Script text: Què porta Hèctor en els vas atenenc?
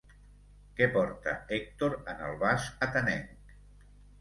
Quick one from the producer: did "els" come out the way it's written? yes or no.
no